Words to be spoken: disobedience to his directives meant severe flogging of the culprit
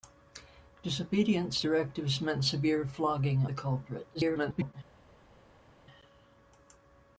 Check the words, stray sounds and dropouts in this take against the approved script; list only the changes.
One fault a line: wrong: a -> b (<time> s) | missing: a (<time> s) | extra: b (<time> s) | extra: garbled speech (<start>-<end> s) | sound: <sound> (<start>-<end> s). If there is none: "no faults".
missing: his (1.7 s)
missing: of (3.5 s)
extra: garbled speech (4.1-4.7 s)